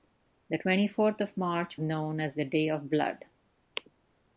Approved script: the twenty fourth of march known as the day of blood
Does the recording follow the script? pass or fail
pass